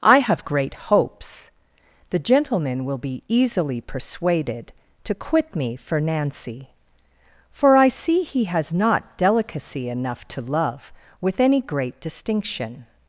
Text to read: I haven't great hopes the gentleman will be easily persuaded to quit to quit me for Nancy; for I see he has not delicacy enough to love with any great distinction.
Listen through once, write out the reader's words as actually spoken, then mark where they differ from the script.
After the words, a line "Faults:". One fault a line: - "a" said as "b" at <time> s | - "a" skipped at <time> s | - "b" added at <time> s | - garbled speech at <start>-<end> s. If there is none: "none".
I have great hopes the gentleman will be easily persuaded to quit me for Nancy; for I see he has not delicacy enough to love with any great distinction.
Faults:
- "haven't" said as "have" at 0.2 s
- "to quit" skipped at 5.5 s